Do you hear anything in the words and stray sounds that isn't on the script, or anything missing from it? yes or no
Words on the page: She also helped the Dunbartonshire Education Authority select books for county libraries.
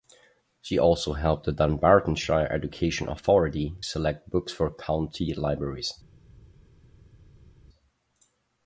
no